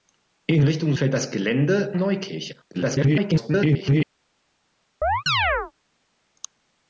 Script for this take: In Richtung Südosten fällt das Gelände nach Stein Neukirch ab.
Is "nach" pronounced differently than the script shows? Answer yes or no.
yes